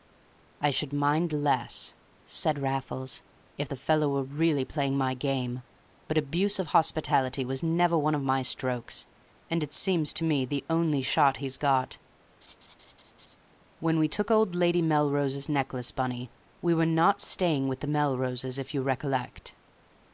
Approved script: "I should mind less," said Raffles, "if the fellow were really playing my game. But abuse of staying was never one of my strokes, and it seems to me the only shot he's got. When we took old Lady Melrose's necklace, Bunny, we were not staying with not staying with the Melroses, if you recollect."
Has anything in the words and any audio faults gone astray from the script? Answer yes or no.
yes